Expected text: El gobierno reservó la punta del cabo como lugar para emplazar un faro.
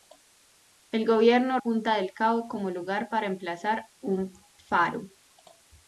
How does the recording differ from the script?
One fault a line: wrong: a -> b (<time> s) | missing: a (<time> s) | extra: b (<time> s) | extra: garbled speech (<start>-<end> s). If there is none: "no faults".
missing: reservó la (1.6 s)